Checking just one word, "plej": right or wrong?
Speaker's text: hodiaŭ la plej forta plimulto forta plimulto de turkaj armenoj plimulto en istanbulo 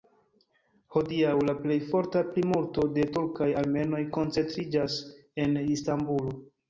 right